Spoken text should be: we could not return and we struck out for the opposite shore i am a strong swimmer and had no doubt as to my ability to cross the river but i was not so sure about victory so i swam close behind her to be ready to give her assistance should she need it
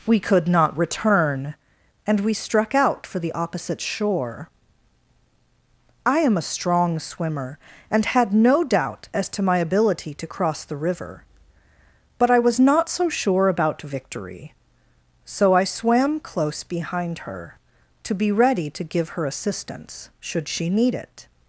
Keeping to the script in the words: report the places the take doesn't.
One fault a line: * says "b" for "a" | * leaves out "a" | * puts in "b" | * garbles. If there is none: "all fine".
all fine